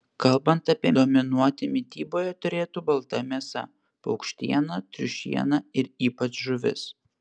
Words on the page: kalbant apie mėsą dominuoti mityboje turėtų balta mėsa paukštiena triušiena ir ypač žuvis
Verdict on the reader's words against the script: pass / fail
fail